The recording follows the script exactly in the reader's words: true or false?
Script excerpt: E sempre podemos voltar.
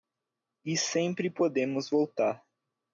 true